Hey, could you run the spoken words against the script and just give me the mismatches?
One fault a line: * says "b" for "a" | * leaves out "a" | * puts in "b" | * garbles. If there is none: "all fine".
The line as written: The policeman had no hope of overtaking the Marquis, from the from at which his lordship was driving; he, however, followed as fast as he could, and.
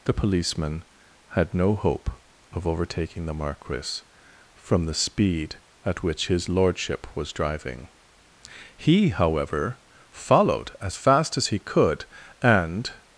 * says "speed" for "from"